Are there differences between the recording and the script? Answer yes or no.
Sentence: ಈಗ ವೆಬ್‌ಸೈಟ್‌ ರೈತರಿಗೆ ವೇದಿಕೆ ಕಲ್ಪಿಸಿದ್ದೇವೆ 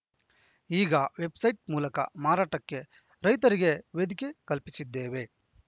yes